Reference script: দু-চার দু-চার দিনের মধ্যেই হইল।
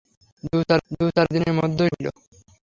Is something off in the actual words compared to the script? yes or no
no